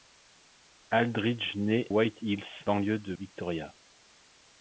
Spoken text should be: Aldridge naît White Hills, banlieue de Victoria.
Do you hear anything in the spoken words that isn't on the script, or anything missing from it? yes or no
no